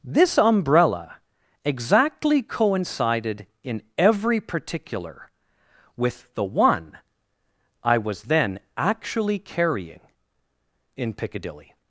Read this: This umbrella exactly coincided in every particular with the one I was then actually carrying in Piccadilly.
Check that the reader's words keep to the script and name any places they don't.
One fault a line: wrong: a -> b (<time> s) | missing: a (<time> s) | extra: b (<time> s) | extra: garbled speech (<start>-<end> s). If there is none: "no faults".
no faults